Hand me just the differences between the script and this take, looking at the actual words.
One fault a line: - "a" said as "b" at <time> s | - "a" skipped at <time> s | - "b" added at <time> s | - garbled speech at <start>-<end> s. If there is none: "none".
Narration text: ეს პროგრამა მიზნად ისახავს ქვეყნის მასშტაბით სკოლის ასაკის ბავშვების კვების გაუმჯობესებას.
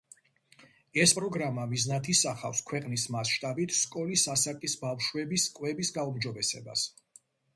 none